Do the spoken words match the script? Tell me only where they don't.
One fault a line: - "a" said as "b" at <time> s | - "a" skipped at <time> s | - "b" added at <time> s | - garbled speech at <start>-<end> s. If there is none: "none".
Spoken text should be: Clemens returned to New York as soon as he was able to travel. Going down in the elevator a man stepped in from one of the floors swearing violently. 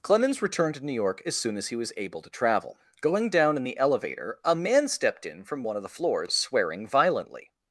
none